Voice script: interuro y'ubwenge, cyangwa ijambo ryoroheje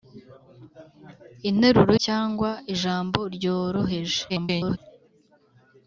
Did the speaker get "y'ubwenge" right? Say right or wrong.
wrong